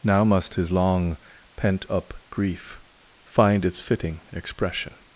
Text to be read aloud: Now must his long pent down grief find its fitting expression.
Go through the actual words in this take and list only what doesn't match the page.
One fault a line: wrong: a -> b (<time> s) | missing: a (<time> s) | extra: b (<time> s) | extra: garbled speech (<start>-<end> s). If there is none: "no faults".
wrong: down -> up (1.9 s)